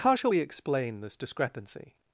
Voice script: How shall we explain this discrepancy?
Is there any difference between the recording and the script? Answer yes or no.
no